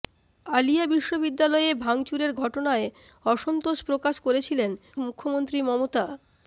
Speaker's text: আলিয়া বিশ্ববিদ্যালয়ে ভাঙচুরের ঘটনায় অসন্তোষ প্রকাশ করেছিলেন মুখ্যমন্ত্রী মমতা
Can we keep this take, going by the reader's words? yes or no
yes